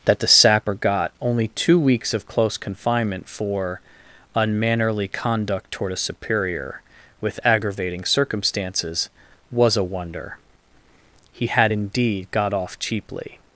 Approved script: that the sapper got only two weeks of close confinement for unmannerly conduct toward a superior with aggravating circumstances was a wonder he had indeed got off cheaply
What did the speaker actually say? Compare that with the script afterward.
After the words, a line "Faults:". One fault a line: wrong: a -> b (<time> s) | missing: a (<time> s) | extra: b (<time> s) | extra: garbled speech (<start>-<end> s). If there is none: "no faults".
that the sapper got only two weeks of close confinement for unmannerly conduct toward a superior with aggravating circumstances was a wonder he had indeed got off cheaply
Faults:
no faults